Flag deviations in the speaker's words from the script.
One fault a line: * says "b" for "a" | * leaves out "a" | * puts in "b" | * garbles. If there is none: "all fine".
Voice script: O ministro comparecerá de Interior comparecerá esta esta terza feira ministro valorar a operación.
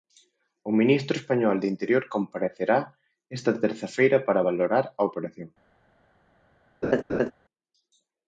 * says "español" for "comparecerá"
* leaves out "esta"
* says "para" for "ministro"